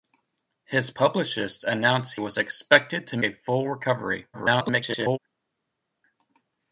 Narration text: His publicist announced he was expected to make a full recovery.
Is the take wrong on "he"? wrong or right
wrong